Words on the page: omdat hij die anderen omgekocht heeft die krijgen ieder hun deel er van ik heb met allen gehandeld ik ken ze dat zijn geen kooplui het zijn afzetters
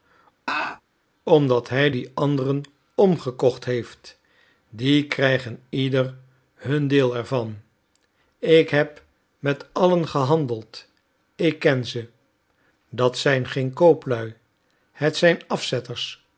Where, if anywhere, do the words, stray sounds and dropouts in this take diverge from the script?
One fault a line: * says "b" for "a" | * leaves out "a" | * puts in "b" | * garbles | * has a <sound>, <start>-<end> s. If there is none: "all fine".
* has a laugh, 0.5-0.8 s